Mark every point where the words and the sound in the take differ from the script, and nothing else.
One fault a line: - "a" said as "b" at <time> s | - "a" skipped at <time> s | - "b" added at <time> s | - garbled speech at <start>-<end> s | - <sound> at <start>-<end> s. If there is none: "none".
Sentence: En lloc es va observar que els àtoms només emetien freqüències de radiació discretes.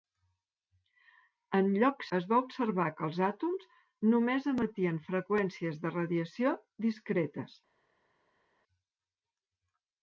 none